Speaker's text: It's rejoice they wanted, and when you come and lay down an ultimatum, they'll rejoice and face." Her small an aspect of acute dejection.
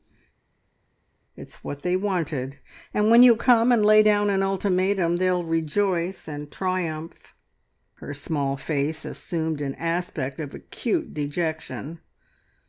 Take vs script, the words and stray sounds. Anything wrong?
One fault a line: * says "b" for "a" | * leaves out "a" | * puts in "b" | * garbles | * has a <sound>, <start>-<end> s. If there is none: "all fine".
* says "what" for "rejoice"
* says "triumph" for "face"
* puts in "face assumed"